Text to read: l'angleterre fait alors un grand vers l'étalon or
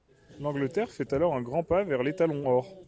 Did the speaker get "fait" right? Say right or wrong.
right